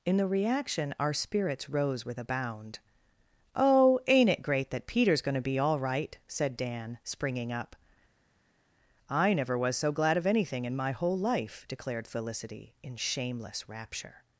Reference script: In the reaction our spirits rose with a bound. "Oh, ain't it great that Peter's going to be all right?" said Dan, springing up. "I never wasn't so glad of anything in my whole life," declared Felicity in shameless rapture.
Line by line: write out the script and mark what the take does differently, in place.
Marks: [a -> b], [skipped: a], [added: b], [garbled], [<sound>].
In the reaction our spirits rose with a bound. "Oh, ain't it great that Peter's going to be all right?" said Dan, springing up. "I never [wasn't -> was] so glad of anything in my whole life," declared Felicity in shameless rapture.